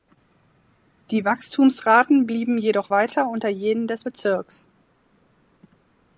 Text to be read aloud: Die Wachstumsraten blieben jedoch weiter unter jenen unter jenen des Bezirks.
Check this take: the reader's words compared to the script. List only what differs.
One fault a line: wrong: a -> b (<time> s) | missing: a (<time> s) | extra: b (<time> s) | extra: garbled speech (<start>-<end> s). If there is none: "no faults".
missing: unter jenen (3.9 s)